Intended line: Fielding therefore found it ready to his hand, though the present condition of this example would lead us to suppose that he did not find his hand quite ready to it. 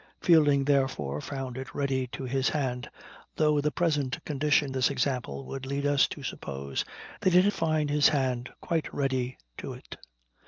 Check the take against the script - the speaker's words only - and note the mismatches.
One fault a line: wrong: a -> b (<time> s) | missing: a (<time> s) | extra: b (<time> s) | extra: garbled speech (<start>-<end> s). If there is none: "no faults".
missing: of (4.8 s)
missing: not (7.5 s)